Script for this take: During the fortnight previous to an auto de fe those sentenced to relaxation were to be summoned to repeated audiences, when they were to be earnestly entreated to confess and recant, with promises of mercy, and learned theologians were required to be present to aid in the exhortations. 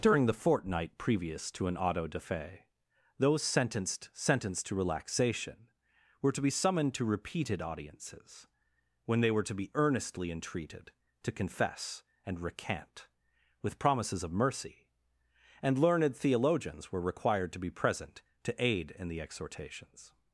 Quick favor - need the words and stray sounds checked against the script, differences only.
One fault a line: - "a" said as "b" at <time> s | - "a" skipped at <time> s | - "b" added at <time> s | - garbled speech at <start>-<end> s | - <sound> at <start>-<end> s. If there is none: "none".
- "sentenced" added at 4.1 s